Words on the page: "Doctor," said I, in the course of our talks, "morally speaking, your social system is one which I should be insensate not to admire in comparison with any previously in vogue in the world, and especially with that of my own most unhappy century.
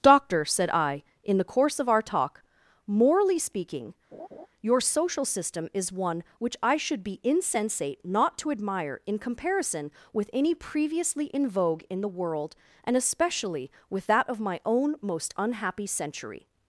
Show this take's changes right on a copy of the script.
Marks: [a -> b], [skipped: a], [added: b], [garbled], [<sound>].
"Doctor," said I, in the course of our [talks, -> talk] "morally speaking, [laugh] your social system is one which I should be insensate not to admire in comparison with any previously in vogue in the world, and especially with that of my own most unhappy century.